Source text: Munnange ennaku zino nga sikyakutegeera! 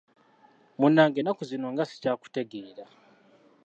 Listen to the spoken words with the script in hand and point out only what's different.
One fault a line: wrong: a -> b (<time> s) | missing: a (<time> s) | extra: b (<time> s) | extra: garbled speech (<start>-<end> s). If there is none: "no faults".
no faults